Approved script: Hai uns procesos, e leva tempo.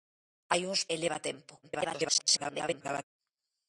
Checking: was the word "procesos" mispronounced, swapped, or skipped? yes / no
yes